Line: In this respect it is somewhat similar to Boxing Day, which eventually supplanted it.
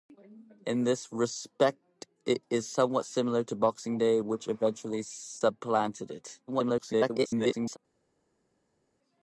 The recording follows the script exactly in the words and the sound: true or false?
false